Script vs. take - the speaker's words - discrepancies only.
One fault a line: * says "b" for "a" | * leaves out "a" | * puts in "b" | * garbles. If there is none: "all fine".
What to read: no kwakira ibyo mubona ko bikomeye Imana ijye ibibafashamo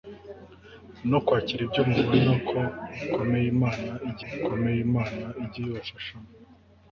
* puts in "bikomeye Imana ijye"